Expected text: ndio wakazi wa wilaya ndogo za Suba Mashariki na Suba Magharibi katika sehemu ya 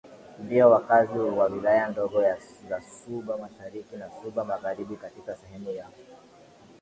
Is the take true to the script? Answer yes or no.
yes